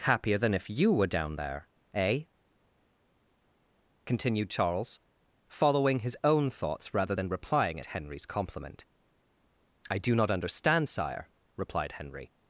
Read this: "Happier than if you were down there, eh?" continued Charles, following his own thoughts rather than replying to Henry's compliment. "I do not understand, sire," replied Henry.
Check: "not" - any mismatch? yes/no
no